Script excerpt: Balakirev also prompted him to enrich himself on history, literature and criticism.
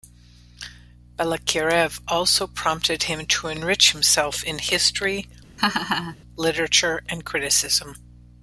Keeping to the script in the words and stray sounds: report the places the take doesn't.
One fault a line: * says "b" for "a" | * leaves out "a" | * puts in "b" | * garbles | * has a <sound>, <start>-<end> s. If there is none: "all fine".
* says "in" for "on"
* has a laugh, 5.6-6.2 s